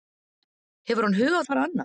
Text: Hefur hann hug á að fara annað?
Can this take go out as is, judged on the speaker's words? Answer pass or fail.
pass